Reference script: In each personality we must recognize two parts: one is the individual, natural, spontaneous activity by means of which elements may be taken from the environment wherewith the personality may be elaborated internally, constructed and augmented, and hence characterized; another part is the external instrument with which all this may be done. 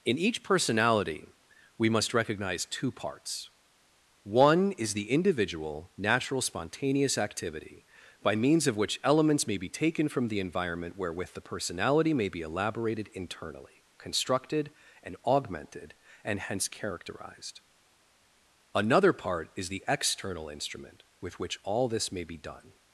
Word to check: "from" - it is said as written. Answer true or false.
true